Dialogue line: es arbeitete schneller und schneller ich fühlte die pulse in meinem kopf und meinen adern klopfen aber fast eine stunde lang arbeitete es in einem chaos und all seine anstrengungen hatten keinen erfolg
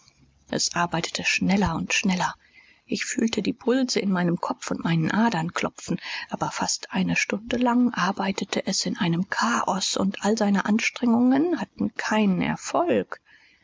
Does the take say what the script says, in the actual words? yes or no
yes